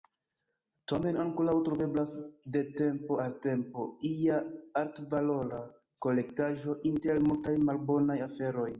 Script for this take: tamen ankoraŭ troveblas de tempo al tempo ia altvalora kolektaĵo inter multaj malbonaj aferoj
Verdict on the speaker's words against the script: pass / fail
pass